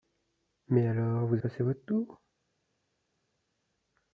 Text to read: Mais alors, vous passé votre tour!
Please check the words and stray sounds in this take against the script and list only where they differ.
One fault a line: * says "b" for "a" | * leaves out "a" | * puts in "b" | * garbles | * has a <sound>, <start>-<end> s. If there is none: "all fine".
all fine